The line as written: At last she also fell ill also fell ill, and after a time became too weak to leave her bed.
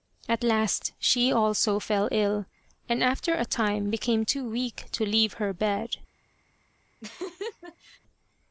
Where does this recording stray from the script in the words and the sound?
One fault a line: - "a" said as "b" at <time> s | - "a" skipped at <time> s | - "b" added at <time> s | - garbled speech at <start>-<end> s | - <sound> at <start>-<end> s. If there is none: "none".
- "also fell ill" skipped at 2.5 s
- laugh at 7.0-8.0 s